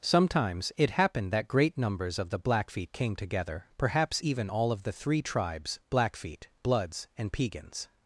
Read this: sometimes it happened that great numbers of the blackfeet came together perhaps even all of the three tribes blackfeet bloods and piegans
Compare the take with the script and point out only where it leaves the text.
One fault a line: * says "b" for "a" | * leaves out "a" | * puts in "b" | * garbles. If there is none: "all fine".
all fine